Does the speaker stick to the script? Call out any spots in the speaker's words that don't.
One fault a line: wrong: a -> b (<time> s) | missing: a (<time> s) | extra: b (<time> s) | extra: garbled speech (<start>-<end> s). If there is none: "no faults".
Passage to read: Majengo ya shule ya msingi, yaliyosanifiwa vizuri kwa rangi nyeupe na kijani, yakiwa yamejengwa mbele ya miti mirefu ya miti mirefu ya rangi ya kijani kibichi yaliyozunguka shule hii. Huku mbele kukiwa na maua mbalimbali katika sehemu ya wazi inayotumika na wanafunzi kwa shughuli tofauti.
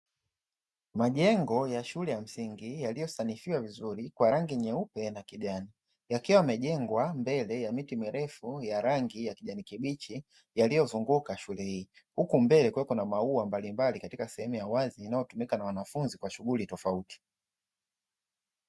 missing: miti mirefu ya (8.8 s)